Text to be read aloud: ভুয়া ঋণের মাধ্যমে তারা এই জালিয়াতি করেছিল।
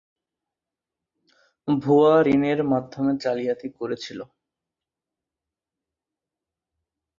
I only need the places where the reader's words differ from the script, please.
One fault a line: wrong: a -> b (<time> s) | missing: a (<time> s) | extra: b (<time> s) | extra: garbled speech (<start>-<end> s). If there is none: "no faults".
missing: তারা এই (3.1 s)